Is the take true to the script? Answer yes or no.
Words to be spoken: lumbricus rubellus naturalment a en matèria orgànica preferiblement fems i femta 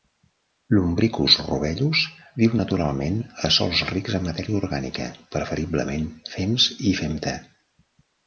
no